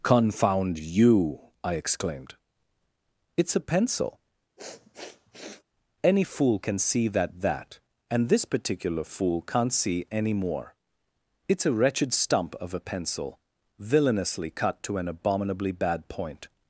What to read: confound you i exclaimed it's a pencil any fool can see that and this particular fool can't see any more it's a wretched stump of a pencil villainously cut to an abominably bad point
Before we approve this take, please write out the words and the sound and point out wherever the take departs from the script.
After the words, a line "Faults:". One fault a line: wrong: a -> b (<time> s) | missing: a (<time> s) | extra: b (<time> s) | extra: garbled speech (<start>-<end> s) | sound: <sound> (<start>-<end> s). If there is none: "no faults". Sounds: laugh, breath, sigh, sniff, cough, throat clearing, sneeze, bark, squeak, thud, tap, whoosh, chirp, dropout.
confound you i exclaimed it's a pencil any fool can see that that and this particular fool can't see any more it's a wretched stump of a pencil villainously cut to an abominably bad point
Faults:
sound: sniff (4.6-5.6 s)
extra: that (7.4 s)